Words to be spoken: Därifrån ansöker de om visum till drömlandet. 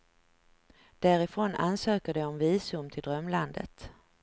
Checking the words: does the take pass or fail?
pass